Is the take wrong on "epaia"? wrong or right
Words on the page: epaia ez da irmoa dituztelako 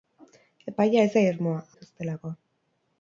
right